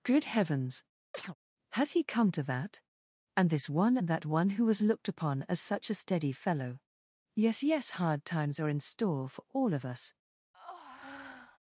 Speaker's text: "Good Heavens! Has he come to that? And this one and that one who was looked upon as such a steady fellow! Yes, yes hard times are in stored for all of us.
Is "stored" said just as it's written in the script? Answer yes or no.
no